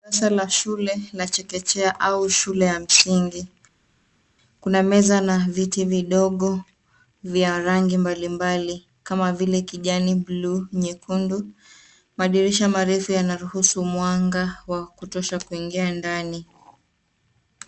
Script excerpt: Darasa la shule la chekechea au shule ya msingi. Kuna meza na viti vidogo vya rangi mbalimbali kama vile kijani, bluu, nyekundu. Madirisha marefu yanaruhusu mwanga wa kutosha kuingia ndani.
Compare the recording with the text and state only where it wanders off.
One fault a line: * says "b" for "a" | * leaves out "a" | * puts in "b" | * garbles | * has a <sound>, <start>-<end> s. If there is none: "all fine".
all fine